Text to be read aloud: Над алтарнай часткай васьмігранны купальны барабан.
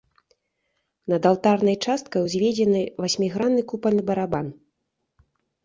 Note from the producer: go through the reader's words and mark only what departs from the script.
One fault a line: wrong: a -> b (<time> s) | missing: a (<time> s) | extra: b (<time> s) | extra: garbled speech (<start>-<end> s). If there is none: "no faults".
extra: узведзены (2.3 s)